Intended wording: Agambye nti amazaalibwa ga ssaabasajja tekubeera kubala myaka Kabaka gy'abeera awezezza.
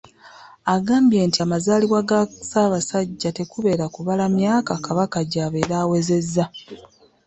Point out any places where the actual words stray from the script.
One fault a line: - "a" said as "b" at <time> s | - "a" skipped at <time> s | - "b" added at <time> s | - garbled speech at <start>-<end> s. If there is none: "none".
none